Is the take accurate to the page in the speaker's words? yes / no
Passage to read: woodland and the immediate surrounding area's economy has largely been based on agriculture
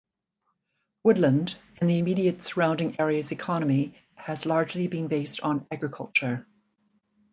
yes